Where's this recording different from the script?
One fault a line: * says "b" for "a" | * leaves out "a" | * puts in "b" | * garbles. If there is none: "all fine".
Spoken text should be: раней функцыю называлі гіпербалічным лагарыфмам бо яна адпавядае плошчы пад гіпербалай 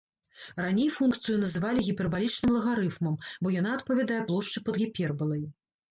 all fine